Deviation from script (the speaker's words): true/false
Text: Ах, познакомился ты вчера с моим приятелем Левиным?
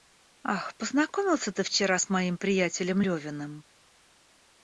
false